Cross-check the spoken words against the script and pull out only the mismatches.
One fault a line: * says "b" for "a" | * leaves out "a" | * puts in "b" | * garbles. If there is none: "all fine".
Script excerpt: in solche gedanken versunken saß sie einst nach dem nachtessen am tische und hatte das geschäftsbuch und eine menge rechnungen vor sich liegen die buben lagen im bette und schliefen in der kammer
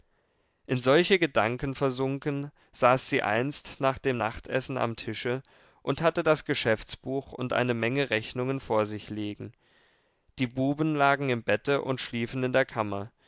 all fine